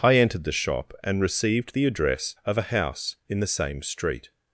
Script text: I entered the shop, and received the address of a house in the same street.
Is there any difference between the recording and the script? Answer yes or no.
no